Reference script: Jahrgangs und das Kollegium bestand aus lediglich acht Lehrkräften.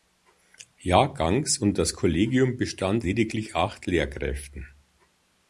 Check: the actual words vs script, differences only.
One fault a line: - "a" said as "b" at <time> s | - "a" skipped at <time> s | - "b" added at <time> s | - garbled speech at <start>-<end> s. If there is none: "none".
- "aus" skipped at 3.0 s